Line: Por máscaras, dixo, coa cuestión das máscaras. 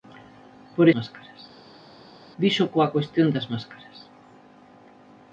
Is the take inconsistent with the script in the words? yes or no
no